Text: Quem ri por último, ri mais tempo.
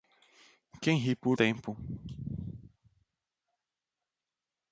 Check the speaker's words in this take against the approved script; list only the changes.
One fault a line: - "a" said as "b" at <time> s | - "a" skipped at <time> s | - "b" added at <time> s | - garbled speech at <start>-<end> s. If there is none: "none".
- "último ri mais" skipped at 1.4 s